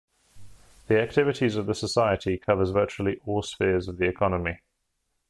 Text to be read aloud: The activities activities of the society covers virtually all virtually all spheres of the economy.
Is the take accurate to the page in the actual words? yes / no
no